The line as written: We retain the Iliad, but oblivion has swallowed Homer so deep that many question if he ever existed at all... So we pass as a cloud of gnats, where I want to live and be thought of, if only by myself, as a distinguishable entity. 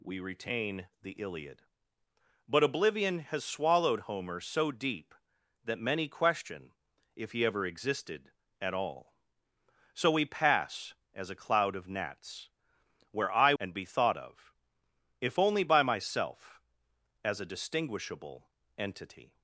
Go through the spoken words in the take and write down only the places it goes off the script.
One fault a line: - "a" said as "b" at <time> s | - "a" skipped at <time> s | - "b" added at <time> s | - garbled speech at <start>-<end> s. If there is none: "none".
- "want to live" skipped at 13.5 s